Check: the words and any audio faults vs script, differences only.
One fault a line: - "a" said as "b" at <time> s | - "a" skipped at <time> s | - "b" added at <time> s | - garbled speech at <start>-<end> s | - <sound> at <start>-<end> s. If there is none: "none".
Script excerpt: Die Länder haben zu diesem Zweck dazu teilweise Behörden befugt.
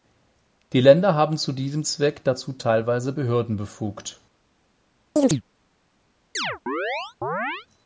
- chirp at 5.2-5.4 s
- chirp at 6.3-7.7 s